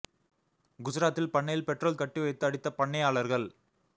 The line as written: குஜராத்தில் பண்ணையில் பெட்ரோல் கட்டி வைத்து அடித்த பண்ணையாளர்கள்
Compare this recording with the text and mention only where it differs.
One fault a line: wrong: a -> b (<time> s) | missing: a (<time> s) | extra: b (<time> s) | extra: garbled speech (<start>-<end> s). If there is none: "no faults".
no faults